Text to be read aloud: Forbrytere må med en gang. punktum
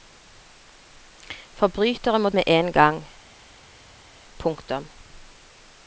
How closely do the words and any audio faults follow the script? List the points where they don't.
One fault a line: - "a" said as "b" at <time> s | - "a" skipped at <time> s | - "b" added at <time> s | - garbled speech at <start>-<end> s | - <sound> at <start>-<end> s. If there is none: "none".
none